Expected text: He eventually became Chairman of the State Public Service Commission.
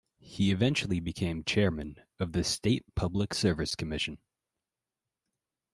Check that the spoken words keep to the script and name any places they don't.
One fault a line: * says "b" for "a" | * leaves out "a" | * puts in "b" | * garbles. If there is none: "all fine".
all fine